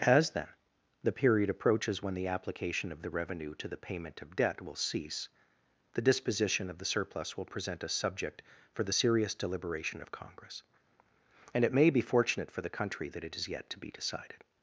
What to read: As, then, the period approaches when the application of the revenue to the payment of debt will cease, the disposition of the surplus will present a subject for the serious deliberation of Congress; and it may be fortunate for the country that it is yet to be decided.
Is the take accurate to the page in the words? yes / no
yes